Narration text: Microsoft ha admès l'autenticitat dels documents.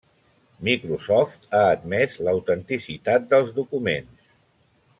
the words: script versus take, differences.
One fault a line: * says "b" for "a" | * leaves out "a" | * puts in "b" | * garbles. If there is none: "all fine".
all fine